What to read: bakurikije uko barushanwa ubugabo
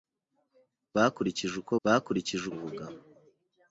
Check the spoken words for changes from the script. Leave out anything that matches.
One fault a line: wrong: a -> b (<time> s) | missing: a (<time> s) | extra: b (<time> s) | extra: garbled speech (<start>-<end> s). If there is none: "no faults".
wrong: barushanwa -> bakurikije (1.8 s)